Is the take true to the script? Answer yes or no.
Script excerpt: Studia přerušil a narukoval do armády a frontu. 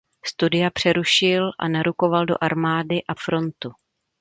yes